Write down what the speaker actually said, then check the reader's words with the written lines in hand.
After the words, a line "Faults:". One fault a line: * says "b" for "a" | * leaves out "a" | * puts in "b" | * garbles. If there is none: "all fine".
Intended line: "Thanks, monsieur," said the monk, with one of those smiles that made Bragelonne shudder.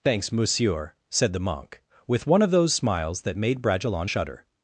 "Thanks, monsieur," said the monk, with one of those smiles that made Bragelonne shudder.
Faults:
all fine